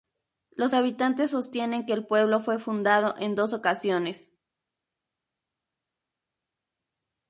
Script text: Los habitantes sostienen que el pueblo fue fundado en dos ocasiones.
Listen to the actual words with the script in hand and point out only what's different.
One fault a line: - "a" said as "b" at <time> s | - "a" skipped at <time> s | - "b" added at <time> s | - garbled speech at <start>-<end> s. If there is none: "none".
none